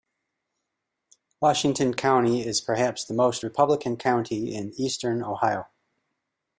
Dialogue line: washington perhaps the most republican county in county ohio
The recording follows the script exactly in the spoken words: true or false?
false